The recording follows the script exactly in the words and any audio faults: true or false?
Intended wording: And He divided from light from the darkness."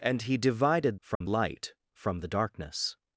false